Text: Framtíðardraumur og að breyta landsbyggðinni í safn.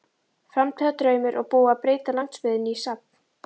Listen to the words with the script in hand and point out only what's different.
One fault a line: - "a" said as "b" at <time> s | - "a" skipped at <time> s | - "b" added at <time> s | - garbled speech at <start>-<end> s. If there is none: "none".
- "búið" added at 1.5 s